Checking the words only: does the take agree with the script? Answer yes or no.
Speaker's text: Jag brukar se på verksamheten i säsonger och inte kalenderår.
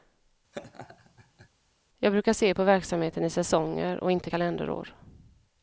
yes